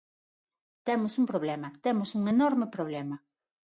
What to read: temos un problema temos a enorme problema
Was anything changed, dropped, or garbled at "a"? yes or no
yes